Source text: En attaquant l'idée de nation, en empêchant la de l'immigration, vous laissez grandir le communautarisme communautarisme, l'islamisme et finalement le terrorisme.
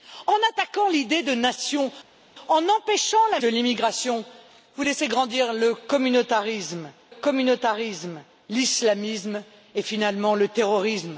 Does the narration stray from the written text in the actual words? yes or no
no